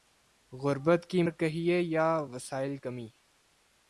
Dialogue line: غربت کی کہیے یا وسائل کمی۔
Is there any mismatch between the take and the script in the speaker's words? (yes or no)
no